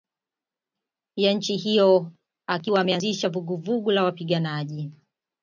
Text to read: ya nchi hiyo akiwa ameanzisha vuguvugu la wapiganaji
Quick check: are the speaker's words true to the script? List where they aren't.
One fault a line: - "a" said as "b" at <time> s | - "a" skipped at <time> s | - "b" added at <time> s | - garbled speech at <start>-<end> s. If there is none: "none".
none